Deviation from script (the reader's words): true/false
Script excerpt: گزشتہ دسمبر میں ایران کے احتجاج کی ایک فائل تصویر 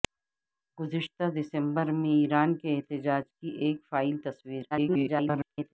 true